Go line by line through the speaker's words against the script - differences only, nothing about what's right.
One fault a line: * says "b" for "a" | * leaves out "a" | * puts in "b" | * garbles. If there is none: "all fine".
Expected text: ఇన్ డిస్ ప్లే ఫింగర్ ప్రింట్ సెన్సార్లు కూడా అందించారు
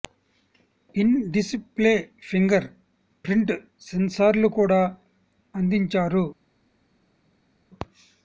all fine